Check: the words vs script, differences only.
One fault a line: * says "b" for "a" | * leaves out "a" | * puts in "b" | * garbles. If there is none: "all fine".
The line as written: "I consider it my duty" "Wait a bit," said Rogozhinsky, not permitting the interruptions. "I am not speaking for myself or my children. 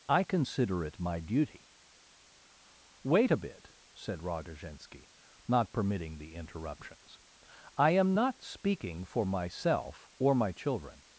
all fine